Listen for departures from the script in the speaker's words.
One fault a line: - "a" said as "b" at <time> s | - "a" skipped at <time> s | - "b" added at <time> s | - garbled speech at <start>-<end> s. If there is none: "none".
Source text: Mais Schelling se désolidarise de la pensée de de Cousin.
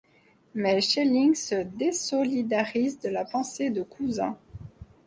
- "de" skipped at 3.8 s